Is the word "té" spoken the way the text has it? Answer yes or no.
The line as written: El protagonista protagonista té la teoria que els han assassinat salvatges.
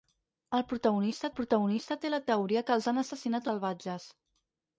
yes